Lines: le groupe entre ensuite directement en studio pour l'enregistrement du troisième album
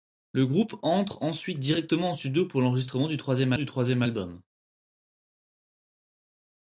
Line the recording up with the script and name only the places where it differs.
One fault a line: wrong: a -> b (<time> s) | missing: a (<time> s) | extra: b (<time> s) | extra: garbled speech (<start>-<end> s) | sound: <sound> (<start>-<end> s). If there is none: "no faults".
extra: du troisième (3.5 s)